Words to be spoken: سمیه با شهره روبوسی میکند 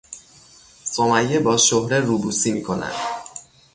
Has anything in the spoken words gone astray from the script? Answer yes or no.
no